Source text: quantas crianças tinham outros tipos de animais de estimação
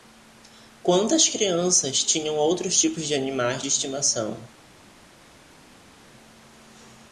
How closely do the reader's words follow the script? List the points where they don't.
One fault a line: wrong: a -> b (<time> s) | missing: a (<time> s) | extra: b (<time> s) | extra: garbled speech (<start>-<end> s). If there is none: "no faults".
no faults